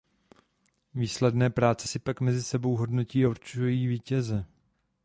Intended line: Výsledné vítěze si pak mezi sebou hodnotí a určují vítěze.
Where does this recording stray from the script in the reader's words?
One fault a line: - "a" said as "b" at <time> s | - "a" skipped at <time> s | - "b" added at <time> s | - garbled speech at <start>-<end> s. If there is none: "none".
- "vítěze" said as "práce" at 1.5 s